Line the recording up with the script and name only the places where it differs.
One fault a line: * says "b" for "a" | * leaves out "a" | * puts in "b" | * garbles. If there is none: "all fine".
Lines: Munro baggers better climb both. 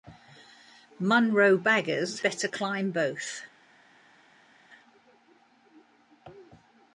all fine